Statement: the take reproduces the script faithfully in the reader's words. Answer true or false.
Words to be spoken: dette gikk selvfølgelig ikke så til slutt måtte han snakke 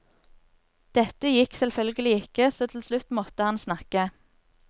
true